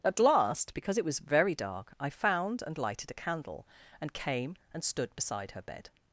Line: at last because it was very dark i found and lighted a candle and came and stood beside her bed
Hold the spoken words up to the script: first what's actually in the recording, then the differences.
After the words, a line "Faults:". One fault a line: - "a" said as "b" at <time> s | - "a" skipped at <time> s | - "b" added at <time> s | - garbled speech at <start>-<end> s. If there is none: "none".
at last because it was very dark i found and lighted a candle and came and stood beside her bed
Faults:
none